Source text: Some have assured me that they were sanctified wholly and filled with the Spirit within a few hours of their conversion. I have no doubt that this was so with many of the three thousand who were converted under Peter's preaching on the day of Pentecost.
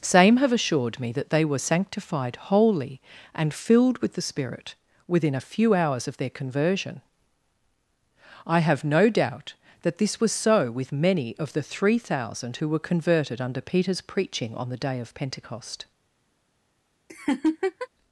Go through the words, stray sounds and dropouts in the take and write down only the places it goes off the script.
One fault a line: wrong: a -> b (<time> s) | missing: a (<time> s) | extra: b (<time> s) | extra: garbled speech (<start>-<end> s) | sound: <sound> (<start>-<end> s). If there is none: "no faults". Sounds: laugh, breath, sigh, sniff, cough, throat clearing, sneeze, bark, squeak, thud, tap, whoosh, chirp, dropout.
wrong: Some -> Same (0.0 s)
sound: laugh (17.1-17.9 s)